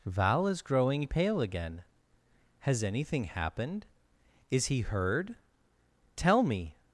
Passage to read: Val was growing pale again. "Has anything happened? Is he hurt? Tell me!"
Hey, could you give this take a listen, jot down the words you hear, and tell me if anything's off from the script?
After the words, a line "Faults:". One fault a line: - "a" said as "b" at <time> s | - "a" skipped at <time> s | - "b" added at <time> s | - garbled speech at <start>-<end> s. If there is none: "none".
Val is growing pale again. "Has anything happened? Is he heard? Tell me!"
Faults:
- "was" said as "is" at 0.5 s
- "hurt" said as "heard" at 4.8 s